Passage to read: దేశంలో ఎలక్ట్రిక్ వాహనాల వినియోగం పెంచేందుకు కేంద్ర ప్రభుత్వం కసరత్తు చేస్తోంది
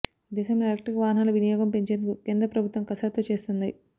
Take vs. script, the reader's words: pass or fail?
pass